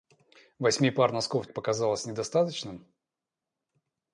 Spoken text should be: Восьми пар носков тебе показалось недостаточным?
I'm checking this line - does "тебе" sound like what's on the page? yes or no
no